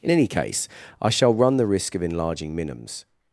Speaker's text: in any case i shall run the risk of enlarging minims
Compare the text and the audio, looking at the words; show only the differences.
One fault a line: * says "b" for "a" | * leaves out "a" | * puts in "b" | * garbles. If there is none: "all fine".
all fine